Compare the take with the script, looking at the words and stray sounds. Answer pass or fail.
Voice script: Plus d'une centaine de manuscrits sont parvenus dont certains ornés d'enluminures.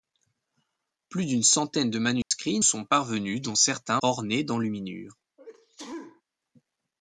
fail